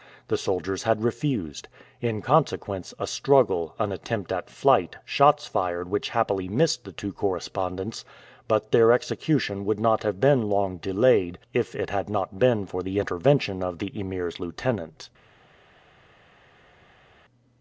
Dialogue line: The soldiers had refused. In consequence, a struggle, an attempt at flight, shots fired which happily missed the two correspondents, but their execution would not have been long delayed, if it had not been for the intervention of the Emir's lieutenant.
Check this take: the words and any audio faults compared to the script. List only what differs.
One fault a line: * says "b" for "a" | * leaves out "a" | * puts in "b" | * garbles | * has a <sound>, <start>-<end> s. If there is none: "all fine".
all fine